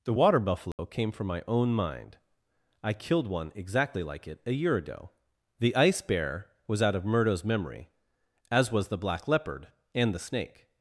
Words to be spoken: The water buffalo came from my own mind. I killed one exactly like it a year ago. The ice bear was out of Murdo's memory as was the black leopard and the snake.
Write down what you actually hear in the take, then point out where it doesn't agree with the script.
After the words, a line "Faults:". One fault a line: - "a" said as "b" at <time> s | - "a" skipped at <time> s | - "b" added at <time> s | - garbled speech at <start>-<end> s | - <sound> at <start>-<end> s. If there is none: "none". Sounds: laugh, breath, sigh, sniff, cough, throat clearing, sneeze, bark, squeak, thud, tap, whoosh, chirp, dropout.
The water buffalo came from my own mind. I killed one exactly like it a year ago. The ice bear was out of Murdo's memory as was the black leopard and the snake.
Faults:
- dropout at 0.7-0.8 s